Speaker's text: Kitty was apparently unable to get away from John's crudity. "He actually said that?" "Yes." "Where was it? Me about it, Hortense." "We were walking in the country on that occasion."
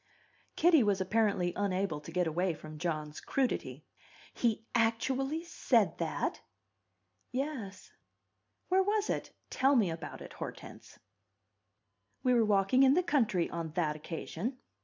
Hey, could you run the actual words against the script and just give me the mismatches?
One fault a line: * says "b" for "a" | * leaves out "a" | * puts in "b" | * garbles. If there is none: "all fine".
* puts in "Tell"